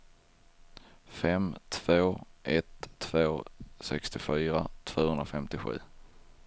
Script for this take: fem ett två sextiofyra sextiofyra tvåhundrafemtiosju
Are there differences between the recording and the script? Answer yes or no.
yes